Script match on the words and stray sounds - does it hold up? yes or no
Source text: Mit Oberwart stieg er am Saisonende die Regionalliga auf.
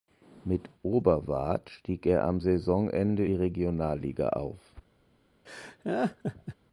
no